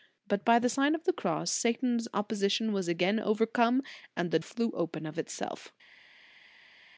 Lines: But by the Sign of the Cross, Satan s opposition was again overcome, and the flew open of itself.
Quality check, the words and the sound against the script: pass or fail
pass